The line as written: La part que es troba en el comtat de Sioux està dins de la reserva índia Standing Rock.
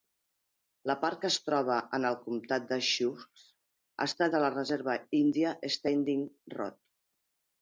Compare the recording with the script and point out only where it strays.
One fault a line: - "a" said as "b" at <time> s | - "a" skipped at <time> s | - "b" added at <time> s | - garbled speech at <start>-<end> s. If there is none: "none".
- "dins" skipped at 4.3 s